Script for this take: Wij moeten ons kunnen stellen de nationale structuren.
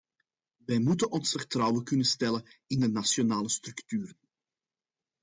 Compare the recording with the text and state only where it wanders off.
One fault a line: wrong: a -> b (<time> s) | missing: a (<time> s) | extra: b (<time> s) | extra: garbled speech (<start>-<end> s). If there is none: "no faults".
extra: vertrouwen (1.3 s)
extra: in (2.7 s)